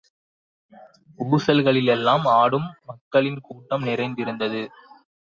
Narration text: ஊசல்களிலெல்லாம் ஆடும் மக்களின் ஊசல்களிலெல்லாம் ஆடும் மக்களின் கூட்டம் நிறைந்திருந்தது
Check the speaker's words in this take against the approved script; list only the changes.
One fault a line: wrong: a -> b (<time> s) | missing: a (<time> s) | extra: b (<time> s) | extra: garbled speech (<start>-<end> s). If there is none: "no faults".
missing: ஊசல்களிலெல்லாம் ஆடும் மக்களின் (3.4 s)